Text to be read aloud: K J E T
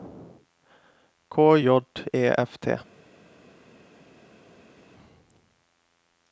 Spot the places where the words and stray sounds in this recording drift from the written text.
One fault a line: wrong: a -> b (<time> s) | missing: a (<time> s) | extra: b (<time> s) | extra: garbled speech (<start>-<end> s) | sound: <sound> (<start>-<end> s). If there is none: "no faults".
extra: F (2.4 s)